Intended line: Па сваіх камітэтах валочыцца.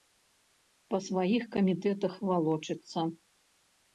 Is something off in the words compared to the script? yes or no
no